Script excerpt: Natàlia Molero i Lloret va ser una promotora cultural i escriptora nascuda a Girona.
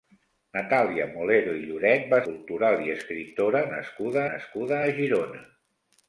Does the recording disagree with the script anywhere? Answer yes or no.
yes